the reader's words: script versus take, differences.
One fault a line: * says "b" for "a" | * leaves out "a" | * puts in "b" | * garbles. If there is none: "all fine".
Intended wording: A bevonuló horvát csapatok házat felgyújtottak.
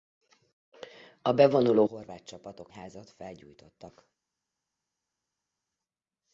all fine